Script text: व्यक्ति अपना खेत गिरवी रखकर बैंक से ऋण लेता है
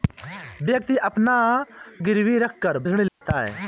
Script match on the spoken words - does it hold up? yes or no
no